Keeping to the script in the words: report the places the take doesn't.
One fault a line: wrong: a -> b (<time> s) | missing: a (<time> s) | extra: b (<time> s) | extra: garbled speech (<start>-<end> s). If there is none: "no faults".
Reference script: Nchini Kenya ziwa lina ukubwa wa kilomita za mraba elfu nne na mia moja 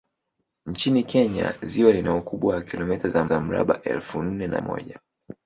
extra: za (3.2 s)
missing: mia (4.6 s)